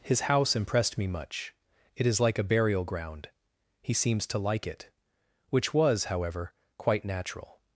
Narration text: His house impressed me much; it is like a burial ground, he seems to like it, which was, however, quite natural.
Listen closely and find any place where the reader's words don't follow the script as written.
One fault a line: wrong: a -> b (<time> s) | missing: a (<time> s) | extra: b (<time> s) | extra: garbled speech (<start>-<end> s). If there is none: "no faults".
no faults